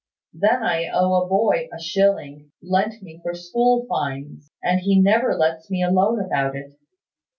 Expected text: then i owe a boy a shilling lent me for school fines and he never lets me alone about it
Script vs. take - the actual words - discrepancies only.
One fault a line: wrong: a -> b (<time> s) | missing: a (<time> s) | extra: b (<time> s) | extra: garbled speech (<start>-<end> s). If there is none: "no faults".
no faults